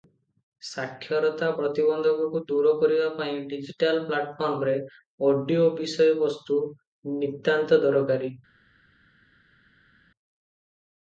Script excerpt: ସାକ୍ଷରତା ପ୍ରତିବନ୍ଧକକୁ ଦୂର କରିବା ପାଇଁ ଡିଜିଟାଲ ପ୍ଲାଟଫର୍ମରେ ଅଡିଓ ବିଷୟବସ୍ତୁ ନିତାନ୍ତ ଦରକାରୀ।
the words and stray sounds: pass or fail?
pass